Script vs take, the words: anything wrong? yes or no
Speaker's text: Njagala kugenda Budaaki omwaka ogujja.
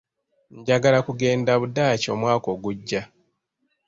no